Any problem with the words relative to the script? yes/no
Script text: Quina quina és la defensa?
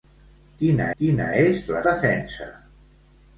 no